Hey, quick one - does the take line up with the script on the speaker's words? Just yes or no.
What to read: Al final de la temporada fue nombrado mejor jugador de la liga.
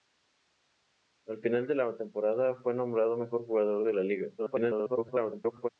no